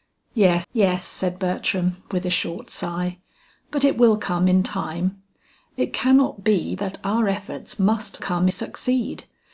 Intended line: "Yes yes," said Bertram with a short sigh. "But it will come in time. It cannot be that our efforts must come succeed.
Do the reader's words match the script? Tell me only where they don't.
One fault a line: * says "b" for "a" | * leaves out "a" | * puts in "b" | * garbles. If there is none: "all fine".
all fine